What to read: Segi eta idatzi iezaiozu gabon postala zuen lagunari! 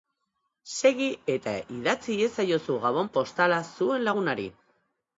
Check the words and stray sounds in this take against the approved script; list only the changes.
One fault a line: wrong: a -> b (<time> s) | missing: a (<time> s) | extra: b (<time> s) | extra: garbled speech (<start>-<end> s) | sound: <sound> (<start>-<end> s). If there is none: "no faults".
no faults